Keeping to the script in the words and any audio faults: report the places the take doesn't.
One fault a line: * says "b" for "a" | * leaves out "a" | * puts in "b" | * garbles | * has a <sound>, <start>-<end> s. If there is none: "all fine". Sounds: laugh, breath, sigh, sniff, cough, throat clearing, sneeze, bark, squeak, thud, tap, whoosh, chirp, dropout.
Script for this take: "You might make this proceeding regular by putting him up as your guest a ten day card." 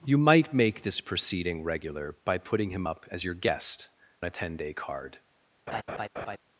* has a laugh, 5.7-6.4 s